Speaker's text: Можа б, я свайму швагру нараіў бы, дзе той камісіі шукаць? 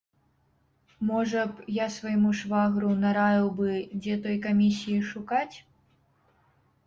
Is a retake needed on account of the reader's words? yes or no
no